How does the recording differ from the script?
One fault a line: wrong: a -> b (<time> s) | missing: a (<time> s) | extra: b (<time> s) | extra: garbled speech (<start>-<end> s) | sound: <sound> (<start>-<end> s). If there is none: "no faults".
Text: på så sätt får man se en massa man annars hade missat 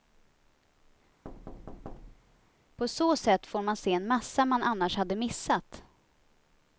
sound: thud (1.2-2.5 s)